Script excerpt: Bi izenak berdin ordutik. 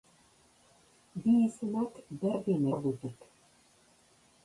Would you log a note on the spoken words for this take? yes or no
no